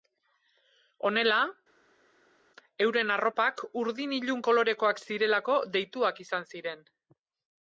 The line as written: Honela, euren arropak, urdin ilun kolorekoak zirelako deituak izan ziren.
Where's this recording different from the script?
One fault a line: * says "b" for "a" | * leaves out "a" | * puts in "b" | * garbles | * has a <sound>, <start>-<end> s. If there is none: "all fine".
all fine